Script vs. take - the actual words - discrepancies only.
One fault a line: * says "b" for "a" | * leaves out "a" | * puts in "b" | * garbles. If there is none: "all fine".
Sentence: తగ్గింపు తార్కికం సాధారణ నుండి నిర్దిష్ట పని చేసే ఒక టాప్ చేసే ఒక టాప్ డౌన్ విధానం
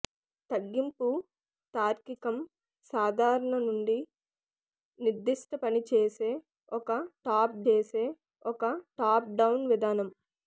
all fine